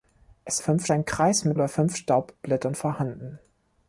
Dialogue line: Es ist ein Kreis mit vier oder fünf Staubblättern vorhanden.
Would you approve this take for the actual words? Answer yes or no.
no